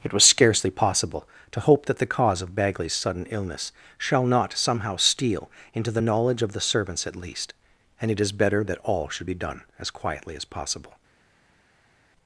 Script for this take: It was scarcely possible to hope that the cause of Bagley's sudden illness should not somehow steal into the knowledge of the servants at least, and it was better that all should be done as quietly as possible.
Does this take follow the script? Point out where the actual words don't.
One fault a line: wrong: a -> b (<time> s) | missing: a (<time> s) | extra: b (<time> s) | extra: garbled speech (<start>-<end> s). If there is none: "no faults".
wrong: should -> shall (4.0 s)
wrong: was -> is (8.2 s)